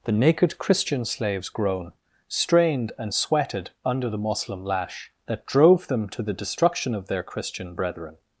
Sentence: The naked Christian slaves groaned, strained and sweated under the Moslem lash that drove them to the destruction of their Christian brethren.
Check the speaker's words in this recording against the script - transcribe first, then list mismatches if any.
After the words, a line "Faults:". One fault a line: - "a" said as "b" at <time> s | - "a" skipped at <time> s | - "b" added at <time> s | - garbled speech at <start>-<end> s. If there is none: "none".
The naked Christian slaves groan, strained and sweated under the Moslem lash that drove them to the destruction of their Christian brethren.
Faults:
- "groaned" said as "groan" at 1.5 s